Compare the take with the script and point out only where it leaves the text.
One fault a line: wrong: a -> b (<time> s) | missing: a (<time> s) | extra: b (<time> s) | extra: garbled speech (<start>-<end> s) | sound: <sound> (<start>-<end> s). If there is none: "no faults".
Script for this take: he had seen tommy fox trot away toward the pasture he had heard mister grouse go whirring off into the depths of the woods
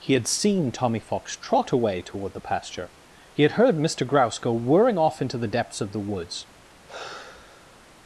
sound: sigh (6.9-7.9 s)